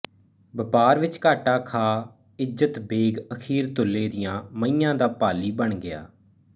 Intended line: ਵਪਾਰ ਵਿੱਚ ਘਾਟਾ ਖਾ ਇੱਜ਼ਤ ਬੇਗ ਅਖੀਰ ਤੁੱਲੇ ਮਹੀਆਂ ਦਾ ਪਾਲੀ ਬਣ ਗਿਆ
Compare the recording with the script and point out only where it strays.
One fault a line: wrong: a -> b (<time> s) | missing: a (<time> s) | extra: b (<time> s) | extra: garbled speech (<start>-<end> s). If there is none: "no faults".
extra: ਦੀਆਂ (4.1 s)